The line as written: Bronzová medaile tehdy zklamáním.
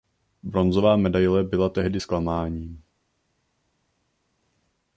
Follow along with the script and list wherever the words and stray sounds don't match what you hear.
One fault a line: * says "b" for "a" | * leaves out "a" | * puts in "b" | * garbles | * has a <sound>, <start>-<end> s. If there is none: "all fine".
* puts in "byla"